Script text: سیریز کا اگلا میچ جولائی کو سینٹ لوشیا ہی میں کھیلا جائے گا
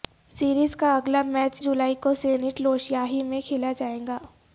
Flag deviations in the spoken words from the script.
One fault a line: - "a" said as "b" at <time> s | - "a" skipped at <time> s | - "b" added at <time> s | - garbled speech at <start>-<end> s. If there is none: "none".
none